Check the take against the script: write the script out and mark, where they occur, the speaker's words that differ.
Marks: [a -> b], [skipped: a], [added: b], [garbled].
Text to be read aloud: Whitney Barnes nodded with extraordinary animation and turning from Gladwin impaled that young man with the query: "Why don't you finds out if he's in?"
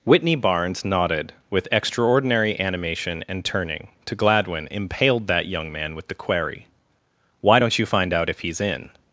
Whitney Barnes nodded with extraordinary animation and turning [from -> to] Gladwin impaled that young man with the query: "Why don't you [finds -> find] out if he's in?"